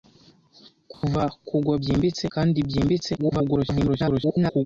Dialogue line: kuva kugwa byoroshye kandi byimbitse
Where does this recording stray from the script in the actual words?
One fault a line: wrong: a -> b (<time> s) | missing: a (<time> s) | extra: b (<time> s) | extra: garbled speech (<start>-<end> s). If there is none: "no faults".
wrong: byoroshye -> byimbitse (1.8 s)
extra: garbled speech (3.2-4.7 s)